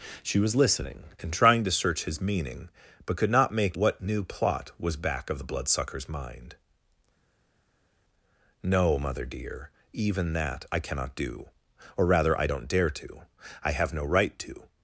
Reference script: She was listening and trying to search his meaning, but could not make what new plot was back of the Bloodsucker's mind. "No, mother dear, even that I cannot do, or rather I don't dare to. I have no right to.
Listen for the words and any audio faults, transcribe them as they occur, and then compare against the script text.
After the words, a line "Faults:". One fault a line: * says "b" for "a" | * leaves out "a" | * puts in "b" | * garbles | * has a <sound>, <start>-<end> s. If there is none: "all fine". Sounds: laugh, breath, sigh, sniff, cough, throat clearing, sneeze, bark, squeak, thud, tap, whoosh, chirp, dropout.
She was listening and trying to search his meaning, but could not make what new plot was back of the Bloodsucker's mind. "No, mother dear, even that I cannot do, or rather I don't dare to. I have no right to.
Faults:
all fine